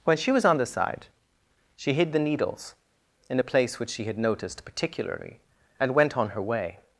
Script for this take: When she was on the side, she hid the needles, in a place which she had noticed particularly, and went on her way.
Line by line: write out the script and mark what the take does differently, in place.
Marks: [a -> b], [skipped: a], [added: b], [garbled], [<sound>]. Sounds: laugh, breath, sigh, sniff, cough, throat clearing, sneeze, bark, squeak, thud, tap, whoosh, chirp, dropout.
When she was on the side, she hid the needles, in a place which she had noticed particularly, and went on her way.